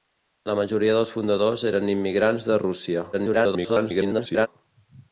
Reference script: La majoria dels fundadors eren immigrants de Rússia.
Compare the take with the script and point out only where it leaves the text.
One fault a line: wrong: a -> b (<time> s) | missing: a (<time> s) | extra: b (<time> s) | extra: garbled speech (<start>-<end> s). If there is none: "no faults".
extra: garbled speech (3.1-4.5 s)